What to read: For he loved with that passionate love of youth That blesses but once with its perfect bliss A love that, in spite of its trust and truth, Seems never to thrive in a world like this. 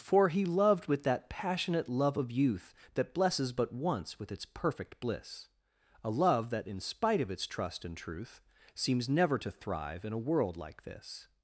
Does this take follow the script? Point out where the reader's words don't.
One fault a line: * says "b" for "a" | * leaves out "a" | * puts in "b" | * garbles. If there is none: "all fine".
all fine